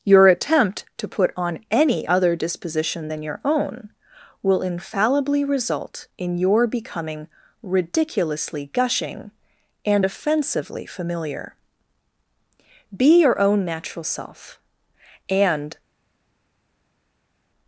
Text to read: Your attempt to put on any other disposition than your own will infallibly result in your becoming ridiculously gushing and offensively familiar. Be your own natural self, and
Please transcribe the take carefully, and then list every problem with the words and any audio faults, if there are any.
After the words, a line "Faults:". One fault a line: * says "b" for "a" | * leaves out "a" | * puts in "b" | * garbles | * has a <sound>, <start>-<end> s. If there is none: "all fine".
Your attempt to put on any other disposition than your own will infallibly result in your becoming ridiculously gushing and offensively familiar. Be your own natural self, and
Faults:
all fine